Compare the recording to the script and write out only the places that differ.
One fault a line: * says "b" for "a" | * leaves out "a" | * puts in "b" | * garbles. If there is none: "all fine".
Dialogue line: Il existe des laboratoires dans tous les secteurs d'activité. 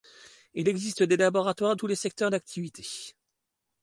* leaves out "dans"